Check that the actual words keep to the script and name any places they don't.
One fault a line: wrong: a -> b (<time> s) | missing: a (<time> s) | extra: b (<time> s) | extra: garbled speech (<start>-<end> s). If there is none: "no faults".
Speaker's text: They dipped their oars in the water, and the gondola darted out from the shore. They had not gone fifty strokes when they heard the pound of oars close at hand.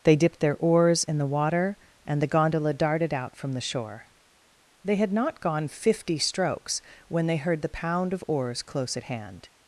no faults